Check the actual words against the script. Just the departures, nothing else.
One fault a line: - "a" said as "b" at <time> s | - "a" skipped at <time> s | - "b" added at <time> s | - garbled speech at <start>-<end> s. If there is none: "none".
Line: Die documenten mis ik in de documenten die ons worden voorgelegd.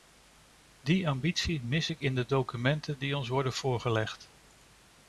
- "documenten" said as "ambitie" at 1.1 s